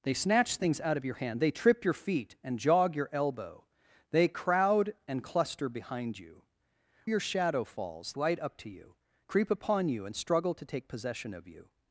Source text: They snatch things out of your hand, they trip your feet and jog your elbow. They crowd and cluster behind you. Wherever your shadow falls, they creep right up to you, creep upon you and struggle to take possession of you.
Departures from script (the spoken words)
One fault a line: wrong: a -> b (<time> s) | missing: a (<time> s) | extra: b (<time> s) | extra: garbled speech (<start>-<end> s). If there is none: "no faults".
missing: Wherever (6.4 s)
missing: they creep (8.1 s)